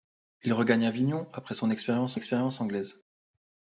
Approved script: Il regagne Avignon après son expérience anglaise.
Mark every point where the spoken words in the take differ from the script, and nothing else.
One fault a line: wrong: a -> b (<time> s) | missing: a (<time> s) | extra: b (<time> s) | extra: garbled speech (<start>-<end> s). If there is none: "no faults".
extra: expérience (2.1 s)